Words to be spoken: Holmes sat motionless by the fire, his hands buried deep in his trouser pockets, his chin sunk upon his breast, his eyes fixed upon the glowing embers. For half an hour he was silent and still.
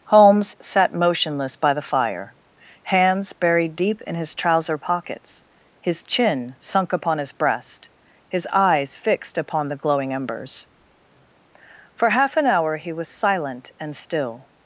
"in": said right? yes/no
yes